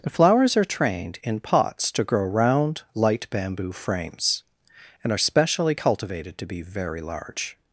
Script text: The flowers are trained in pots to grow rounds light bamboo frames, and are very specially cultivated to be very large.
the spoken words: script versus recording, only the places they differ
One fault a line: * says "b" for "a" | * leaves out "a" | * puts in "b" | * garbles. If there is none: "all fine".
* says "round" for "rounds"
* leaves out "very"